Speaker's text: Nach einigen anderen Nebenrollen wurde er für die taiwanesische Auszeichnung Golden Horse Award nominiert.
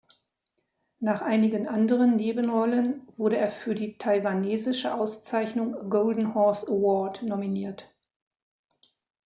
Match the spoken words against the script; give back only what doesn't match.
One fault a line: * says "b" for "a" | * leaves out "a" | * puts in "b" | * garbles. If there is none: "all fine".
all fine